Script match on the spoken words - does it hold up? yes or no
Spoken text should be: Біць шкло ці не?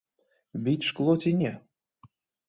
yes